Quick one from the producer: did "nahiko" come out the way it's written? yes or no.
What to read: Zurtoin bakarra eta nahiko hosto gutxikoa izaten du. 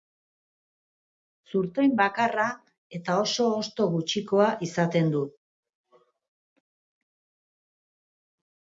no